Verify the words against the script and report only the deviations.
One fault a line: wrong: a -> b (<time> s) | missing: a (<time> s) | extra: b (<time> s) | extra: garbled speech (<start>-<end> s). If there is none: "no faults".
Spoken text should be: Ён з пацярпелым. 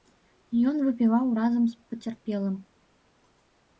extra: выпіваў разам (0.8 s)